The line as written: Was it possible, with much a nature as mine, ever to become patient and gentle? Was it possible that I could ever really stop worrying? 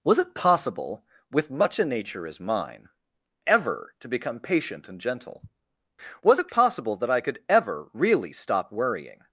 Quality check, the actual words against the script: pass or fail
pass